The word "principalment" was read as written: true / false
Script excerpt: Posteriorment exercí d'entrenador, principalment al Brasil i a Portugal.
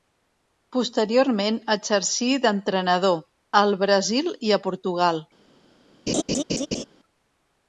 false